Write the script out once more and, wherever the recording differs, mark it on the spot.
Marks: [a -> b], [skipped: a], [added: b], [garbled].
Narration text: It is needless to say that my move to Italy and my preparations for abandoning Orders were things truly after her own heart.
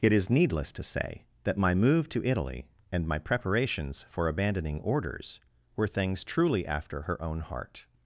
It is needless to say that my move to Italy and my preparations for abandoning Orders were things truly after her own heart.